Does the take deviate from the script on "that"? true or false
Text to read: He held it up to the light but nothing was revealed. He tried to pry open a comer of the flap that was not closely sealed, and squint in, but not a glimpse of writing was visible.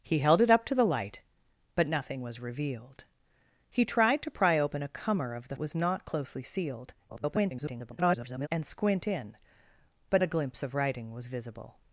true